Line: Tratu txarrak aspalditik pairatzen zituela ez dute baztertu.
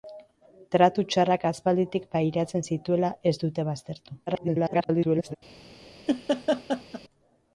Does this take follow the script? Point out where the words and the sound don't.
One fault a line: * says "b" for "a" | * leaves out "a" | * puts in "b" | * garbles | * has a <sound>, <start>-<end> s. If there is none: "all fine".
* garbles
* has a laugh, 6.1-7.0 s